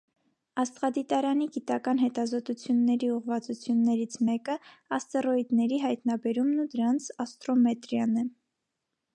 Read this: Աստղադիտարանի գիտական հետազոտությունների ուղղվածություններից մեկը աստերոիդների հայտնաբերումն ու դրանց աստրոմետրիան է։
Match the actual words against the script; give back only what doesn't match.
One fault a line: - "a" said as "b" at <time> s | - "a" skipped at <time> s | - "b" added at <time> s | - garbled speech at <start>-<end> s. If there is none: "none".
none